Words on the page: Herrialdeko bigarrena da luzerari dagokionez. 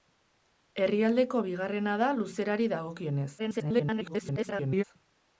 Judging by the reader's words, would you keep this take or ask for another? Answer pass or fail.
fail